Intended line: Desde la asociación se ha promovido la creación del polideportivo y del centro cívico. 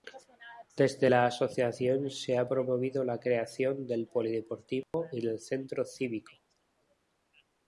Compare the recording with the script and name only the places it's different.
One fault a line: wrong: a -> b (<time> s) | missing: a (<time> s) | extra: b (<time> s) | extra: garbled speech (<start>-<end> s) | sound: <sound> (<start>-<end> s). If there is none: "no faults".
sound: dropout (4.8-4.9 s)